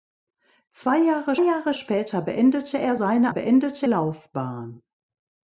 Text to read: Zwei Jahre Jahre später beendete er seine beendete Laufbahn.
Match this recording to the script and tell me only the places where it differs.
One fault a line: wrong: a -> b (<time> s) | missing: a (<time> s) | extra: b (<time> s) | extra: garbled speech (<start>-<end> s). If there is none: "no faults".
no faults